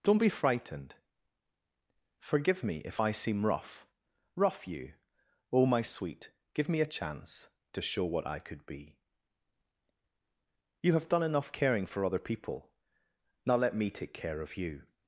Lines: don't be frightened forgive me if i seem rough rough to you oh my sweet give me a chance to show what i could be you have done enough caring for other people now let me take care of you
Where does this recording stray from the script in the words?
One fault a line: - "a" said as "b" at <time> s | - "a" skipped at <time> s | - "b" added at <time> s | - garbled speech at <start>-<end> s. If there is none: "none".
- "to" skipped at 4.7 s